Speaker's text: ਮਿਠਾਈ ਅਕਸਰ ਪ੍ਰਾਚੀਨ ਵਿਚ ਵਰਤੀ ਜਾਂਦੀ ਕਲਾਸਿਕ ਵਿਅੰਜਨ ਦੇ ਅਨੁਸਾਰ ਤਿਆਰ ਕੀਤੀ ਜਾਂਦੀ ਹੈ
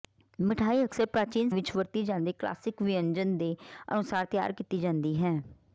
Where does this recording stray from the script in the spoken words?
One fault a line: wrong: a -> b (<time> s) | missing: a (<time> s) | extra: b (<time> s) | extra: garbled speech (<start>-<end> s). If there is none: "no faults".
no faults